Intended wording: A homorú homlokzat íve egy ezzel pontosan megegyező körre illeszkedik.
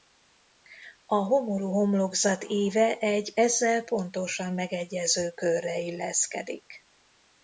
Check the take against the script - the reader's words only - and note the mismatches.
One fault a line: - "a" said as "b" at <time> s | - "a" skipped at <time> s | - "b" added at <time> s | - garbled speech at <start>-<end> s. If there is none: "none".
none